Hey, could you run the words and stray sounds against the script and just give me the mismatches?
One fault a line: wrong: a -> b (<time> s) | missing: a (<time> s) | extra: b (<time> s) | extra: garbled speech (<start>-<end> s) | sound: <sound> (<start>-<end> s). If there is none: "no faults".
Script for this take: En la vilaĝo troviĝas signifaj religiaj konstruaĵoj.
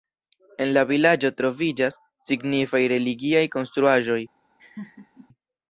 sound: laugh (4.6-5.3 s)